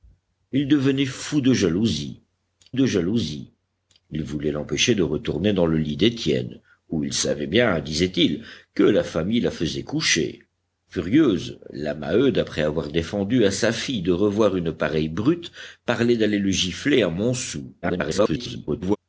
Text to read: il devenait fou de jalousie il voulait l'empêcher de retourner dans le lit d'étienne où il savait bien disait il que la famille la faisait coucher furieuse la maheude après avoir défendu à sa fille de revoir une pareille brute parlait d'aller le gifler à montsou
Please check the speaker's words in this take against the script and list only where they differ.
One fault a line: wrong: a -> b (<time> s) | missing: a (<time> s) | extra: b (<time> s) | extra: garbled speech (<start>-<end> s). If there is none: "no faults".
extra: de jalousie (2.7 s)
extra: garbled speech (17.8-19.0 s)